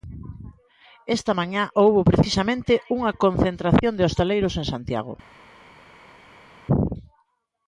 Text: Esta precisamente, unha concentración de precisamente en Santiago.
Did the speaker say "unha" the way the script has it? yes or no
yes